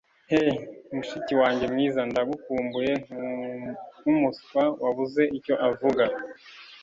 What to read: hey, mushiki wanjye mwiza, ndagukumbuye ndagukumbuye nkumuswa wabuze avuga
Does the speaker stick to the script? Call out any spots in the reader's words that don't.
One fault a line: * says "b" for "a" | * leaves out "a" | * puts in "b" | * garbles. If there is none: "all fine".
* leaves out "ndagukumbuye"
* puts in "icyo"